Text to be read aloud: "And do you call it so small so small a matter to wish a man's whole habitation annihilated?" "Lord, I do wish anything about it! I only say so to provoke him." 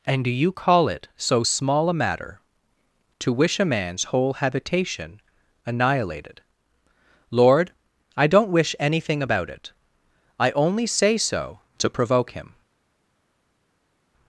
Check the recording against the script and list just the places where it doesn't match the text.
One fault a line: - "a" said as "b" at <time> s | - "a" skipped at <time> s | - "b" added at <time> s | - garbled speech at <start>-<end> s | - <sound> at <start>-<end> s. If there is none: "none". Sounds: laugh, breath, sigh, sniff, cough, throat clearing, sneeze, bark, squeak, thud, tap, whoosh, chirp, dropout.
- "so small" skipped at 1.9 s
- "do" said as "don't" at 8.3 s